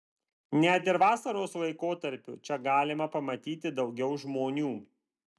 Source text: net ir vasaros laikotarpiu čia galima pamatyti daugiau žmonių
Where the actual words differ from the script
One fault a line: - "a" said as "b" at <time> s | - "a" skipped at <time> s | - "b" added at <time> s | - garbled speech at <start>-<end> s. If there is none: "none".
none